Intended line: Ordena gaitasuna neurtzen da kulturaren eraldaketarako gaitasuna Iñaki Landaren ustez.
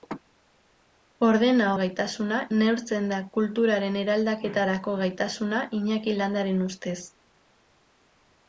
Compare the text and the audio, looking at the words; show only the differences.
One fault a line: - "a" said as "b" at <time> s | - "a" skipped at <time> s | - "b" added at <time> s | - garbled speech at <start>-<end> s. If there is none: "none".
none